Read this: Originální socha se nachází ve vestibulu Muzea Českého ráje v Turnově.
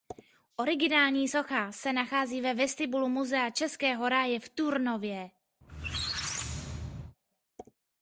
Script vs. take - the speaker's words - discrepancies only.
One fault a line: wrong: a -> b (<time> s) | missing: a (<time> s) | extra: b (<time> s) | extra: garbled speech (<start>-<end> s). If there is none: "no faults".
no faults